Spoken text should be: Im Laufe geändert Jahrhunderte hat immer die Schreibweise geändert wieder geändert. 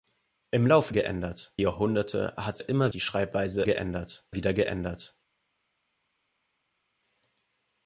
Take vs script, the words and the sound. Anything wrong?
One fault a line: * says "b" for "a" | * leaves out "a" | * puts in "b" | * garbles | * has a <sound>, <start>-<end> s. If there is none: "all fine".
all fine